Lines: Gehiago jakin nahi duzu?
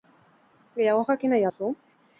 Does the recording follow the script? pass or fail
pass